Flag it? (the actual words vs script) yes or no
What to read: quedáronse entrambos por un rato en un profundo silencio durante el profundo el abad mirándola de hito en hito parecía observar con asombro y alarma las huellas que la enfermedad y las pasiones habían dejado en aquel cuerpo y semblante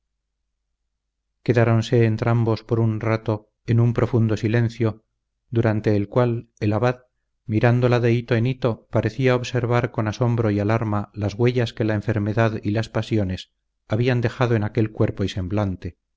yes